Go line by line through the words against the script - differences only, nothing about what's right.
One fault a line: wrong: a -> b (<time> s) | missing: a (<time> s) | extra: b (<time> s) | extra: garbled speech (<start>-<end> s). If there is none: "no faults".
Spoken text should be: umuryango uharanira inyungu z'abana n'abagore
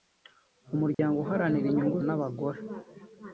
missing: z'abana (2.0 s)